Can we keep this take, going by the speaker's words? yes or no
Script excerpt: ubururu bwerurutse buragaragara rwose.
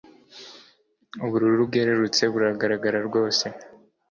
yes